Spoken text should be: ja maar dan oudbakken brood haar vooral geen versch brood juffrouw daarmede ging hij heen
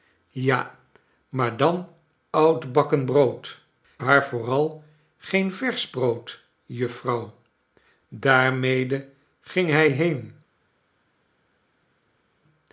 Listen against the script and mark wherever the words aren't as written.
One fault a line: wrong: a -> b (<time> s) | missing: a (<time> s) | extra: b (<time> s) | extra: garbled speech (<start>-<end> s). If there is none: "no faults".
no faults